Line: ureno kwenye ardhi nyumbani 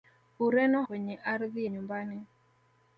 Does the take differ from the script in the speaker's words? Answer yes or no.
no